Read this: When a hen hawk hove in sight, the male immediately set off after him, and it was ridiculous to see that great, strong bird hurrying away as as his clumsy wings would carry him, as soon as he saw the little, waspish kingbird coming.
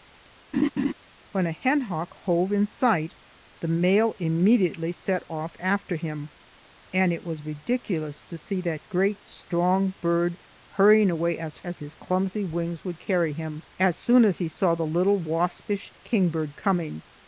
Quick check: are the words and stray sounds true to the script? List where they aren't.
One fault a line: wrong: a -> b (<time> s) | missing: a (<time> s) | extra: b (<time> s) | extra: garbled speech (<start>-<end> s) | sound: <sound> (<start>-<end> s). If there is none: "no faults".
sound: laugh (0.5-0.9 s)